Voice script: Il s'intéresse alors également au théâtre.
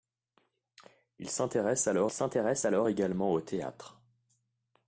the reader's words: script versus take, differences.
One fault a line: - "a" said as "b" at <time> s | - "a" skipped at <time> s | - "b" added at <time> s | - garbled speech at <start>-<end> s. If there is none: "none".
- "s'intéresse alors" added at 2.1 s